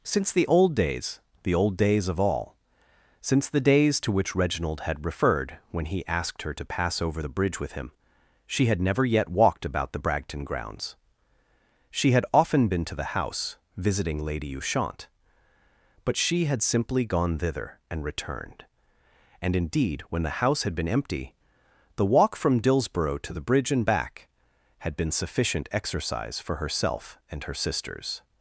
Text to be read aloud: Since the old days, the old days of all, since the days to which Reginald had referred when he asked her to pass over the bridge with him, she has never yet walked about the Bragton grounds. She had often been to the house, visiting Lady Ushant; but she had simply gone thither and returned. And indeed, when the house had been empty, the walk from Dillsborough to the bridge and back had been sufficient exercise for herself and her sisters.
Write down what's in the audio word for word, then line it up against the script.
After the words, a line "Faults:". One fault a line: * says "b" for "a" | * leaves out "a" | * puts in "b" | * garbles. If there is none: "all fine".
Since the old days, the old days of all, since the days to which Reginald had referred when he asked her to pass over the bridge with him, she had never yet walked about the Bragton grounds. She had often been to the house, visiting Lady Ushant; but she had simply gone thither and returned. And indeed, when the house had been empty, the walk from Dillsborough to the bridge and back had been sufficient exercise for herself and her sisters.
Faults:
* says "had" for "has"